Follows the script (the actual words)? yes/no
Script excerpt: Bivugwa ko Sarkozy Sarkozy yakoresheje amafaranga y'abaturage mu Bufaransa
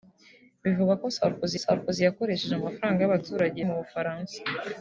yes